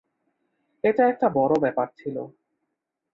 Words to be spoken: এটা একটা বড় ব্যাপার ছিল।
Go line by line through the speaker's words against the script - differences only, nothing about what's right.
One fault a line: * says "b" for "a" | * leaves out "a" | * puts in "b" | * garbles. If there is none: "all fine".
all fine